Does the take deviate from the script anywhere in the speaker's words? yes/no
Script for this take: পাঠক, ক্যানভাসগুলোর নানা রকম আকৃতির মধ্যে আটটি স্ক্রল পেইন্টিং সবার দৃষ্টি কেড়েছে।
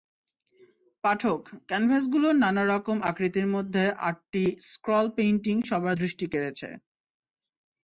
no